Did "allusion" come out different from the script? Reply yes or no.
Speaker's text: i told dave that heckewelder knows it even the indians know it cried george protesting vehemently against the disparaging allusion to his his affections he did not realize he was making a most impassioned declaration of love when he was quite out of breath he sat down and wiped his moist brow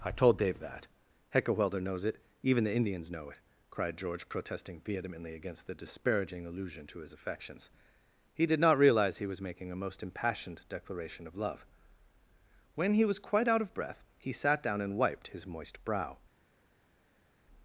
no